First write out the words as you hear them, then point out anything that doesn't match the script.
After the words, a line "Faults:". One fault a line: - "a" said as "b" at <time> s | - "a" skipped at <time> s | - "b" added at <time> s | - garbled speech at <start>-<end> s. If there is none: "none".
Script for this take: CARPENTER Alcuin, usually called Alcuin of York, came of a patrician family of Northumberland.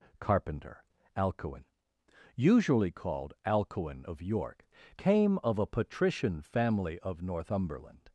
CARPENTER Alcuin, usually called Alcuin of York, came of a patrician family of Northumberland.
Faults:
none